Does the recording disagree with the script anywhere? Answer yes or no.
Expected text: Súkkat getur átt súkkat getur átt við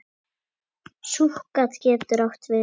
yes